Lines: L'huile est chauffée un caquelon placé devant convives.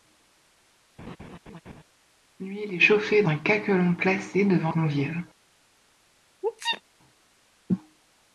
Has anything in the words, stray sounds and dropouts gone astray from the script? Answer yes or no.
yes